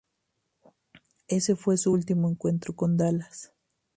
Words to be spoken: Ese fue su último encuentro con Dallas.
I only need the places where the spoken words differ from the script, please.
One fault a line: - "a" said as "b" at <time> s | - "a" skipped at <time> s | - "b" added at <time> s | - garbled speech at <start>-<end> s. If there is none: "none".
none